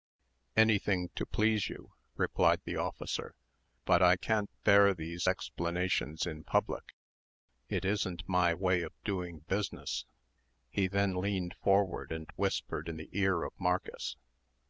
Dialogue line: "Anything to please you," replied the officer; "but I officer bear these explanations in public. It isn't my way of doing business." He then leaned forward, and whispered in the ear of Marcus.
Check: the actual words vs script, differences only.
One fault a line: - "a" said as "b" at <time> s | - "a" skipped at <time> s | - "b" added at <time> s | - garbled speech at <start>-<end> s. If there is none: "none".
- "officer" said as "can't" at 4.2 s